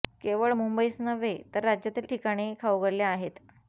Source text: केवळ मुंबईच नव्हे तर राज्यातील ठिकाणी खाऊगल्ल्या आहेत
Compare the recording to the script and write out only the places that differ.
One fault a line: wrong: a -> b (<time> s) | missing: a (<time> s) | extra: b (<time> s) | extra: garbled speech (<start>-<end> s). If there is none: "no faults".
no faults